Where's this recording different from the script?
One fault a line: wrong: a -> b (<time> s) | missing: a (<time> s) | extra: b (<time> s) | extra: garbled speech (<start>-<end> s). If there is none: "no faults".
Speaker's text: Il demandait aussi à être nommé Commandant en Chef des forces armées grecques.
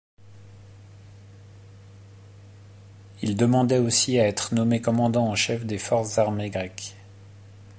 no faults